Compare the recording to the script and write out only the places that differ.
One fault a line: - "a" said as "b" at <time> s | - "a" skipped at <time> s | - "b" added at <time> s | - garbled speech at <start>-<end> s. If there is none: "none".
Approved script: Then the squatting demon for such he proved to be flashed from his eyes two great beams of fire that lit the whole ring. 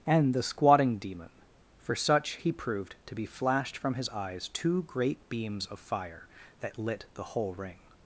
- "Then" said as "And" at 0.1 s